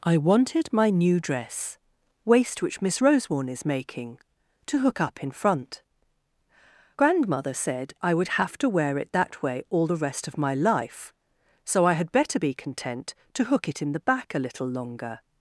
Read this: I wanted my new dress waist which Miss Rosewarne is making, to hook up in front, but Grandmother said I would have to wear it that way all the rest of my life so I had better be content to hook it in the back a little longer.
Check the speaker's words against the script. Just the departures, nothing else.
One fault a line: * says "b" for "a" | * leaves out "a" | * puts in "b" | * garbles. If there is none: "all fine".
* leaves out "but"